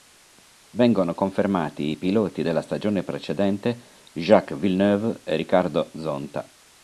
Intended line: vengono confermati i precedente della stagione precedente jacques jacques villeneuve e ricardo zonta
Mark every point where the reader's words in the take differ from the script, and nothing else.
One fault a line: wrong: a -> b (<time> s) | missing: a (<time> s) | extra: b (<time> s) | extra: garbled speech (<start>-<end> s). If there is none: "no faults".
wrong: precedente -> piloti (2.0 s)
missing: jacques (4.6 s)